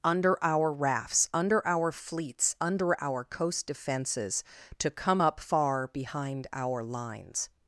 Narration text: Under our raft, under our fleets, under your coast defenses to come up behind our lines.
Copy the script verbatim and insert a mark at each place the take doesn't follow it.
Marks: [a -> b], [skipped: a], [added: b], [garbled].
Under our [raft, -> rafts] under our fleets, under [your -> our] coast defenses to come up [added: far] behind our lines.